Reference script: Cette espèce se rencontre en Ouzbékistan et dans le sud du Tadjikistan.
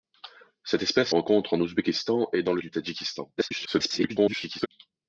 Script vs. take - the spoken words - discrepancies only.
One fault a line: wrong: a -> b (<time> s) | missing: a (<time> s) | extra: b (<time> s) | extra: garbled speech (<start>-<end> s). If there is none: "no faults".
missing: se (1.1 s)
missing: sud (2.6 s)
extra: garbled speech (3.4-4.7 s)